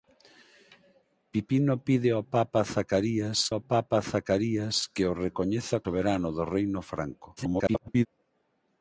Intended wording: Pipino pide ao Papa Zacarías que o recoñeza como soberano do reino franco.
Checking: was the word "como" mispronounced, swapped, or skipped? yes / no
yes